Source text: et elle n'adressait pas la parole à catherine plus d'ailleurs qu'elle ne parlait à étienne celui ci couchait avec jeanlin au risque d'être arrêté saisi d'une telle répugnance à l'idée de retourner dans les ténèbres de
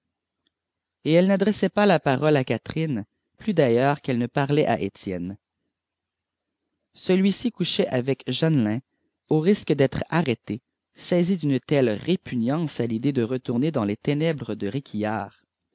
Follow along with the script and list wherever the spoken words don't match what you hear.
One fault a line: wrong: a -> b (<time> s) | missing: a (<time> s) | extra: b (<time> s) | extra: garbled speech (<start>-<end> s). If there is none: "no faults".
no faults